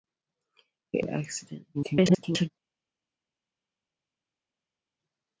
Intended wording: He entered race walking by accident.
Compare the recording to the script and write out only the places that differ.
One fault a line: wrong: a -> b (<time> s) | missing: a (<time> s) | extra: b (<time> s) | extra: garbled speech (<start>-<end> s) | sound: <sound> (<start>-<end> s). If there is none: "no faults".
missing: entered race walking (1.0 s)
extra: garbled speech (1.7-2.5 s)